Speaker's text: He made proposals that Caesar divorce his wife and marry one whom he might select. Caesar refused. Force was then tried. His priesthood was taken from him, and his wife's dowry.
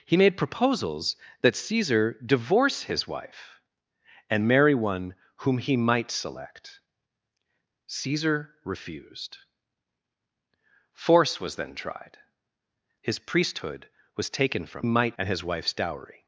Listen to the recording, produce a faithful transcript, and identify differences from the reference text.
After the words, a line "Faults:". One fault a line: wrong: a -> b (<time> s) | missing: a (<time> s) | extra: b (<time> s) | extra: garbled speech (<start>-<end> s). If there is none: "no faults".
He made proposals that Caesar divorce his wife and marry one whom he might select. Caesar refused. Force was then tried. His priesthood was taken from might, and his wife's dowry.
Faults:
wrong: him -> might (14.8 s)